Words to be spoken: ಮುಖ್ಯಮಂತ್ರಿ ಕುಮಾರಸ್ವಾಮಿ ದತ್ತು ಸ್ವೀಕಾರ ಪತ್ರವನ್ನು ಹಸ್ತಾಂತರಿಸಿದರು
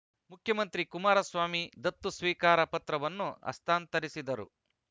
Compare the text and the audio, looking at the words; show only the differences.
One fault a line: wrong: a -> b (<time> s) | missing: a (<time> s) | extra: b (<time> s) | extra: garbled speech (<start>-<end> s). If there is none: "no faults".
no faults